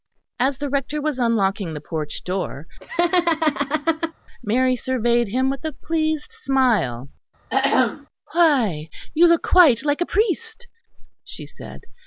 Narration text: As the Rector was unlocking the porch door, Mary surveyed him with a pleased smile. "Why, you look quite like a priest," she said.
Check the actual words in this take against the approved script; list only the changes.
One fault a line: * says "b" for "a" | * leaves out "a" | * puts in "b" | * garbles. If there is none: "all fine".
all fine